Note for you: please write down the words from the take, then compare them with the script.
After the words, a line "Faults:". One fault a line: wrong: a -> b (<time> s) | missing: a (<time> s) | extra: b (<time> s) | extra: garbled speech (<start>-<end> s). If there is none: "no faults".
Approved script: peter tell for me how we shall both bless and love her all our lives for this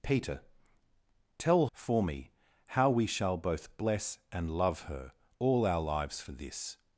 peter tell for me how we shall both bless and love her all our lives for this
Faults:
no faults